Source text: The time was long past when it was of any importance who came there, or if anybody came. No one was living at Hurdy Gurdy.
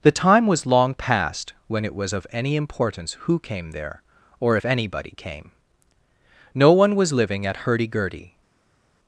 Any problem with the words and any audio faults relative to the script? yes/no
no